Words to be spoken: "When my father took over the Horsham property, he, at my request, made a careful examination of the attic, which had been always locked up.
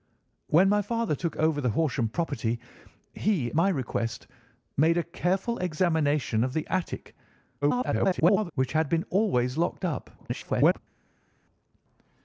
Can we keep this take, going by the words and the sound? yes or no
no